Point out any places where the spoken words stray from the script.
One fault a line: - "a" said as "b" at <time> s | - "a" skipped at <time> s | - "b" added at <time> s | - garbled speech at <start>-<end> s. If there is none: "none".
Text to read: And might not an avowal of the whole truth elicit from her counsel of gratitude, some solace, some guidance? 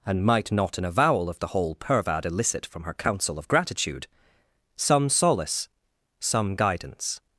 - "truth" said as "pervad" at 1.8 s